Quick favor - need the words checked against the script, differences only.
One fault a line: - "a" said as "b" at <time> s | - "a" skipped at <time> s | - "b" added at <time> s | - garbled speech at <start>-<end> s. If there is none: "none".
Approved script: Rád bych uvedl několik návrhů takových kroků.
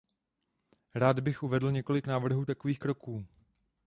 none